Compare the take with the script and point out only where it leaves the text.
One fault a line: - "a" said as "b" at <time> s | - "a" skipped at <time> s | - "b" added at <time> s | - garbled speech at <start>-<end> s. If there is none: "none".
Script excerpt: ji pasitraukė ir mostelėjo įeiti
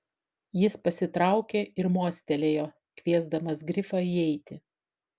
- "ji" said as "jis" at 0.6 s
- "kviesdamas grifą" added at 3.0 s